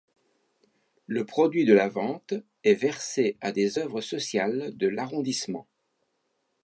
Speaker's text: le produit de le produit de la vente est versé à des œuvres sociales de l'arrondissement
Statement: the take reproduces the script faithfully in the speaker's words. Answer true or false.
false